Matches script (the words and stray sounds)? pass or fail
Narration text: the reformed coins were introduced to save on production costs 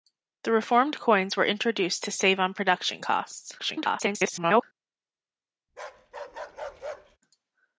fail